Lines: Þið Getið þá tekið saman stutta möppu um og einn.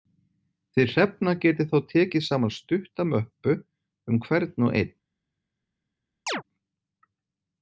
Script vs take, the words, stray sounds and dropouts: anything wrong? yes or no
yes